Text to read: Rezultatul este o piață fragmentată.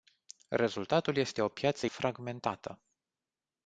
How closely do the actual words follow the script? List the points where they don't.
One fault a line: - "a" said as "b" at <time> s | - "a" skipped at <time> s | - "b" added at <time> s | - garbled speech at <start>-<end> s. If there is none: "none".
none